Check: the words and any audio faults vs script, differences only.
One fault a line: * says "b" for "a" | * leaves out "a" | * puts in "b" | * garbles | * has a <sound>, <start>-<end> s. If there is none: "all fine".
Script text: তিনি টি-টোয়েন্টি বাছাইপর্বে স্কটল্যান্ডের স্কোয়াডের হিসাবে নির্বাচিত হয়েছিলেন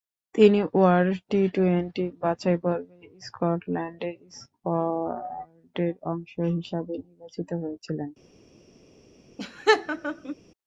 * puts in "ওয়ার্ল্ড"
* puts in "অংশ"
* has a laugh, 9.4-10.4 s